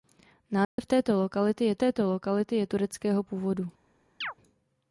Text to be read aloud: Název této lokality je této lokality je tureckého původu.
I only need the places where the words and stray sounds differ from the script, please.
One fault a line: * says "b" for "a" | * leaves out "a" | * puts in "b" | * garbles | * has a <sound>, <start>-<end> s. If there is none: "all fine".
* has a dropout, 0.6-0.8 s
* has a chirp, 4.2-4.3 s